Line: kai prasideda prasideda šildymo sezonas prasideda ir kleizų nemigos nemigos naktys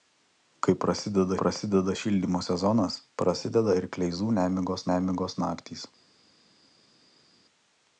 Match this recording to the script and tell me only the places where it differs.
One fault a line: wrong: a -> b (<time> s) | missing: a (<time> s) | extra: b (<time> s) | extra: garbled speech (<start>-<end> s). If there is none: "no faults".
no faults